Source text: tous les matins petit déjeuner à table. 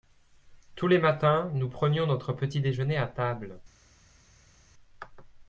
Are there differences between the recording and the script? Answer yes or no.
yes